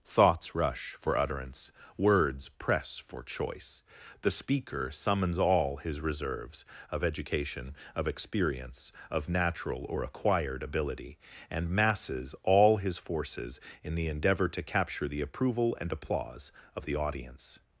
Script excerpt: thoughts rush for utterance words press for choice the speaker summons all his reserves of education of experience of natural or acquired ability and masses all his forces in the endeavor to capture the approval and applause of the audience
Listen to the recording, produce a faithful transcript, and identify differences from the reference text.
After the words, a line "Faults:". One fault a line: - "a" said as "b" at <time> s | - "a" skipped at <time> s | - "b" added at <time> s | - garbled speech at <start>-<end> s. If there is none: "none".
thoughts rush for utterance words press for choice the speaker summons all his reserves of education of experience of natural or acquired ability and masses all his forces in the endeavor to capture the approval and applause of the audience
Faults:
none